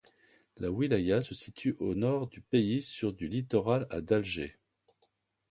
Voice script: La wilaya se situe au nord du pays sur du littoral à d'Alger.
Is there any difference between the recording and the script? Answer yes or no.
no